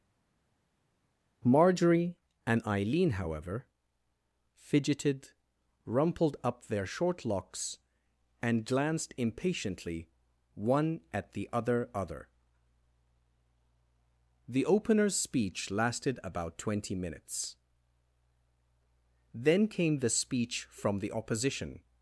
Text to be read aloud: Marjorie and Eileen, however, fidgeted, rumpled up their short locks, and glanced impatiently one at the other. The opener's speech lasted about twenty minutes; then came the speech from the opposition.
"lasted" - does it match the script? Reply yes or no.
yes